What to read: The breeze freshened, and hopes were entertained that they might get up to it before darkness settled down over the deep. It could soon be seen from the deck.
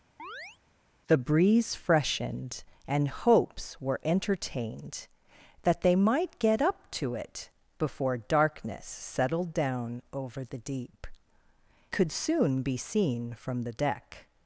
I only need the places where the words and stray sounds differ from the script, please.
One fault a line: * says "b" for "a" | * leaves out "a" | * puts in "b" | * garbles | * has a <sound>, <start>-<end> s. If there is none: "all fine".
* has a chirp, 0.2-0.6 s
* leaves out "It"